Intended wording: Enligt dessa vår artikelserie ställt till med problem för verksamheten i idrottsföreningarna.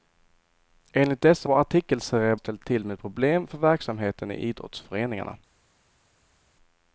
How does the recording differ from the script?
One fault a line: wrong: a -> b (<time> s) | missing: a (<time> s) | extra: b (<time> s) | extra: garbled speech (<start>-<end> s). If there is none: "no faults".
no faults